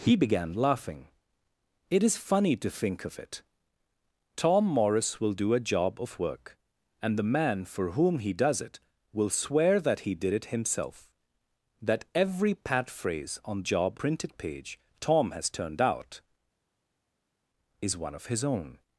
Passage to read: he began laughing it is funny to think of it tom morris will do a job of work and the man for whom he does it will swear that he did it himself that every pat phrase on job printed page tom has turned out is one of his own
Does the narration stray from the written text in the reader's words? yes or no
no